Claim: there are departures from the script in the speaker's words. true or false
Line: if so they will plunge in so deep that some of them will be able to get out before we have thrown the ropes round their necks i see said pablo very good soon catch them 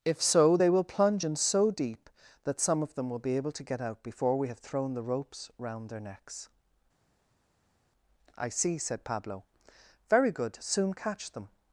false